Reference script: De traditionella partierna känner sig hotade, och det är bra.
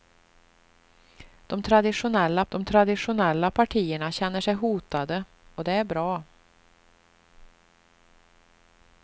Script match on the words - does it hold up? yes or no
no